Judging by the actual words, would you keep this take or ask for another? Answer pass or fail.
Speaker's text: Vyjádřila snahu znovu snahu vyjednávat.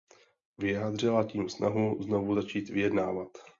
fail